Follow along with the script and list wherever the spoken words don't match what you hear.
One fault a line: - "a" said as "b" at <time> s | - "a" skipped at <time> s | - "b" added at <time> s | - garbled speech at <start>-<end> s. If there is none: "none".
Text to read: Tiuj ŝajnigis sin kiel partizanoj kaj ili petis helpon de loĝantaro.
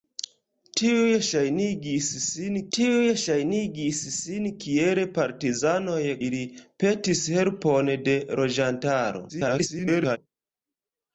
- "tiuj ŝajnigis sin" added at 2.8 s
- "kaj" skipped at 6.0 s
- garbled speech at 9.3-10.2 s